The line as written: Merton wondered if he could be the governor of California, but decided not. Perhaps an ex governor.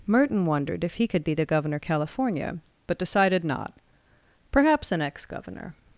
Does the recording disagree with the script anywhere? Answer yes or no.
yes